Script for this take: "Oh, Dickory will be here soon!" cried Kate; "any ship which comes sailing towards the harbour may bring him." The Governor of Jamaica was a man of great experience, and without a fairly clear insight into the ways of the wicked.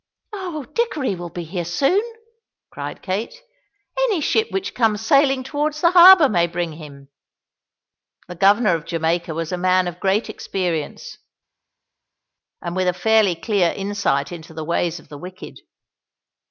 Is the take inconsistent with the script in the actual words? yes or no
yes